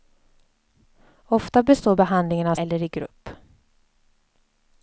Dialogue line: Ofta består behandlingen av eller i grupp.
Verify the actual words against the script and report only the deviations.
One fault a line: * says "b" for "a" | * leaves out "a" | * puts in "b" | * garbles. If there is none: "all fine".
all fine